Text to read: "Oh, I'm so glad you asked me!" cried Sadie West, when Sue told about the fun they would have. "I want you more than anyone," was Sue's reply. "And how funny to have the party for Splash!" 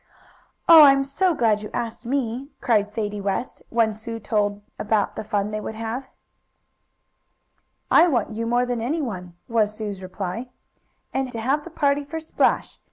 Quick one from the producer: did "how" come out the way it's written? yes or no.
no